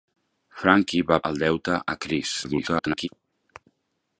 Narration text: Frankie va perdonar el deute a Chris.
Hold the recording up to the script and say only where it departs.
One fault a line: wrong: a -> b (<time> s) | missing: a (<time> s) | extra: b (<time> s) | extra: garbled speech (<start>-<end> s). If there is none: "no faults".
missing: perdonar (1.2 s)
extra: garbled speech (2.4-3.1 s)